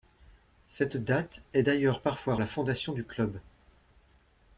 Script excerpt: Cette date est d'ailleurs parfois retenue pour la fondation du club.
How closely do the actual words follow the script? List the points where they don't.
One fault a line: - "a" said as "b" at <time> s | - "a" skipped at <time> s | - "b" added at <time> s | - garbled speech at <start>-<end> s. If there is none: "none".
- "retenue pour" skipped at 2.4 s